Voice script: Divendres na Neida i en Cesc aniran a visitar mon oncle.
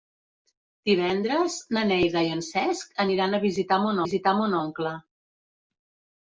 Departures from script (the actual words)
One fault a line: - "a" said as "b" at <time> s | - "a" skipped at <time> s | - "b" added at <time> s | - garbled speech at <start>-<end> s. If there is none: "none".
- "visitar mon" added at 4.0 s